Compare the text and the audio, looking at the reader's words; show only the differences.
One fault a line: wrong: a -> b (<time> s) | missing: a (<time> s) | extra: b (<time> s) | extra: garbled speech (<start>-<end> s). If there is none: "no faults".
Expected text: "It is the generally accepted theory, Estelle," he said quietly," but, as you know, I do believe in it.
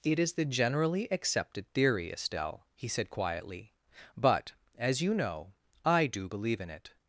no faults